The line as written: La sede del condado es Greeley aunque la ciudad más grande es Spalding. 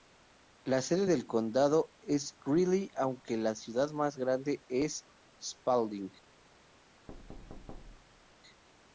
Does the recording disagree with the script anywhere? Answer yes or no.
no